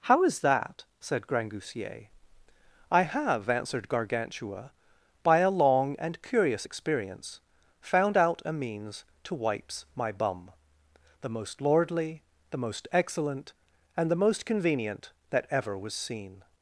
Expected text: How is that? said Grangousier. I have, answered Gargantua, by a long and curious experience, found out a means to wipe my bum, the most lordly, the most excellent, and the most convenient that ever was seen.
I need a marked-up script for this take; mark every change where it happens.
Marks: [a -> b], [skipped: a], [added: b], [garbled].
How is that? said Grangousier. I have, answered Gargantua, by a long and curious experience, found out a means to [wipe -> wipes] my bum, the most lordly, the most excellent, and the most convenient that ever was seen.